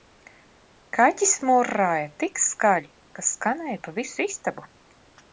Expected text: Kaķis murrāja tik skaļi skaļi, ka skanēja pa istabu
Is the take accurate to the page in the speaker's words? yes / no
no